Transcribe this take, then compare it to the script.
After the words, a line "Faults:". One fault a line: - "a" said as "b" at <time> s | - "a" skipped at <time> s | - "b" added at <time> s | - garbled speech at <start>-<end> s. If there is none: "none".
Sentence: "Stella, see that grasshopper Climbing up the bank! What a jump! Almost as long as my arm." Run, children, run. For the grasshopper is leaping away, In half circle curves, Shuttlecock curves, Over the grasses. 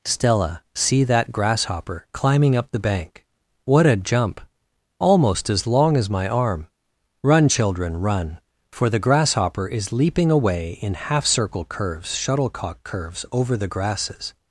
"Stella, see that grasshopper Climbing up the bank! What a jump! Almost as long as my arm." Run, children, run. For the grasshopper is leaping away, In half circle curves, Shuttlecock curves, Over the grasses.
Faults:
none